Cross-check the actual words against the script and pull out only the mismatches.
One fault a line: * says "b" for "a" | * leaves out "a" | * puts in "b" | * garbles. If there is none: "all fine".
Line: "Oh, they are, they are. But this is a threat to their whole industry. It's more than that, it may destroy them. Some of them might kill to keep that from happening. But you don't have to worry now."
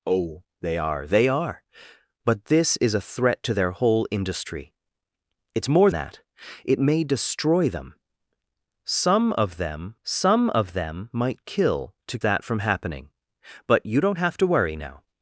* leaves out "than"
* puts in "some of them"
* leaves out "keep"